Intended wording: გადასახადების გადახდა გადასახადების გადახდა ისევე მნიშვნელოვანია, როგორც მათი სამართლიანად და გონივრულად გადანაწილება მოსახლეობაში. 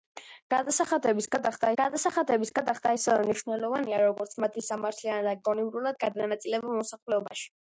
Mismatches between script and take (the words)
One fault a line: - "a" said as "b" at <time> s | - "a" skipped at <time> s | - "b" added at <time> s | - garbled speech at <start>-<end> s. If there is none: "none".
none